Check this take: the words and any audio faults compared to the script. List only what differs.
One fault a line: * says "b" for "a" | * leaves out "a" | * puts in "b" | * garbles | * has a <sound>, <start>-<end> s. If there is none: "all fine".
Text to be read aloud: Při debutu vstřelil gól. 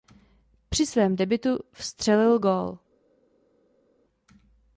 * puts in "svém"